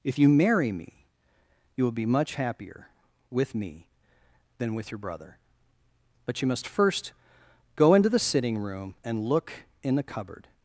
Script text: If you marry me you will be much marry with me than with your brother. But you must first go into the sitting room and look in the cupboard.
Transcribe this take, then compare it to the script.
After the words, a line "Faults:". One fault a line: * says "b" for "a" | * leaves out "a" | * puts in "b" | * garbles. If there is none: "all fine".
If you marry me you will be much happier with me than with your brother. But you must first go into the sitting room and look in the cupboard.
Faults:
* says "happier" for "marry"